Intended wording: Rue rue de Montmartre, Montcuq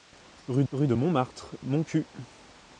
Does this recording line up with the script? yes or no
yes